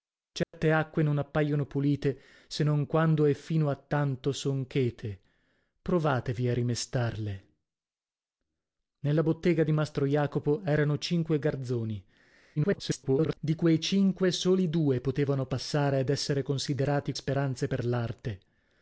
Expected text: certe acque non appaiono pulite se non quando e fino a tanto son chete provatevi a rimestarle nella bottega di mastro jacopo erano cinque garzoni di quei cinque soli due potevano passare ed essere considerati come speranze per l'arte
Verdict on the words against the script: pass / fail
fail